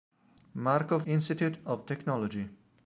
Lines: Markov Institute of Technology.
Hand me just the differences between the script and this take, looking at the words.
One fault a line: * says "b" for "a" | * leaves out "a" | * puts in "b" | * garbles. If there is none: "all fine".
all fine